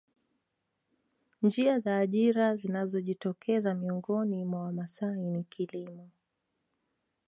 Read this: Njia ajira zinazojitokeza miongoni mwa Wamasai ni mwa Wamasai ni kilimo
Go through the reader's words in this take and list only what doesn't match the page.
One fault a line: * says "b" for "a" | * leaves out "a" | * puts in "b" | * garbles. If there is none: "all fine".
* puts in "za"
* leaves out "mwa Wamasai ni"